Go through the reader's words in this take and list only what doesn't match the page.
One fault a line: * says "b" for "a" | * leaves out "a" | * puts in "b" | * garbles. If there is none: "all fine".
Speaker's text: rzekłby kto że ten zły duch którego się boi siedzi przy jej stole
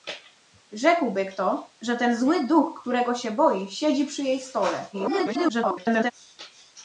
* garbles